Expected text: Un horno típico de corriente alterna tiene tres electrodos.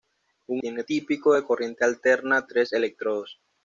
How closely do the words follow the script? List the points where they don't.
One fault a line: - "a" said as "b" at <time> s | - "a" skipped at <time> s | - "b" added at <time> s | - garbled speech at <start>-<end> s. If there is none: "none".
- "horno" said as "tiene" at 0.6 s
- "tiene" skipped at 2.5 s